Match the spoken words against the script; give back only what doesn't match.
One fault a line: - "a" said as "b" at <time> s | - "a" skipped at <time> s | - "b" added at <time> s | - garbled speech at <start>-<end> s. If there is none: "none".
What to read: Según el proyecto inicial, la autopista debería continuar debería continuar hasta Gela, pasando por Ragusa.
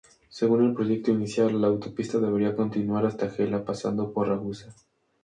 - "debería continuar" skipped at 3.0 s